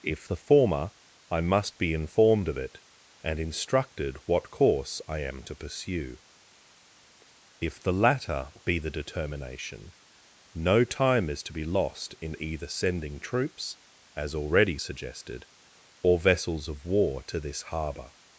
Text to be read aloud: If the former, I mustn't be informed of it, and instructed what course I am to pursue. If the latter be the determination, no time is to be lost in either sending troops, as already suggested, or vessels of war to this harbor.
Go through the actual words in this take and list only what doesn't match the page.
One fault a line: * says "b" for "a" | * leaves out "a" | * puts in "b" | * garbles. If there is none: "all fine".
* says "must" for "mustn't"